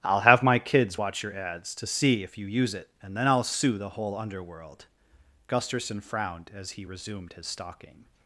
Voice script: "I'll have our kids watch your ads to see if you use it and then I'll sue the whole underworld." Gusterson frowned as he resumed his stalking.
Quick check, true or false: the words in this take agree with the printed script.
false